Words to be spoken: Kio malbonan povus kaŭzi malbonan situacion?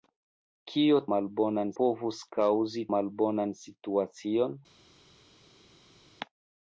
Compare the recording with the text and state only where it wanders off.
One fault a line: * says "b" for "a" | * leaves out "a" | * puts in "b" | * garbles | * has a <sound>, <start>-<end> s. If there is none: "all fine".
all fine